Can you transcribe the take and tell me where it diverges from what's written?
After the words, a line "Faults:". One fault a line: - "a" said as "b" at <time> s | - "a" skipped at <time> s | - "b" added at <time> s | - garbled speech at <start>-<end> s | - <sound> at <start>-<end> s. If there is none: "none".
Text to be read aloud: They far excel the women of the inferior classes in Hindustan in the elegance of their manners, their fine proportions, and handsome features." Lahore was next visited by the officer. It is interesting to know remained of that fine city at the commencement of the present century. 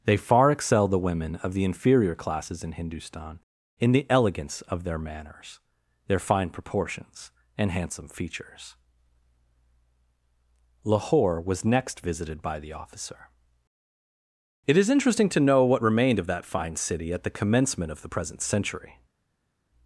They far excel the women of the inferior classes in Hindustan in the elegance of their manners, their fine proportions, and handsome features." Lahore was next visited by the officer. It is interesting to know what remained of that fine city at the commencement of the present century.
Faults:
- "what" added at 15.6 s